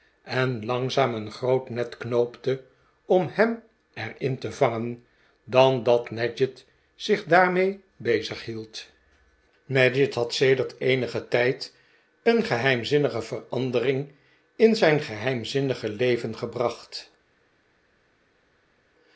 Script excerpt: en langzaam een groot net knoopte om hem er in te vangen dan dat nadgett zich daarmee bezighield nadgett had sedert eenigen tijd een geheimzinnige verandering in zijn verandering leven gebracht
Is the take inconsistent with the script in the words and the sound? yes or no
yes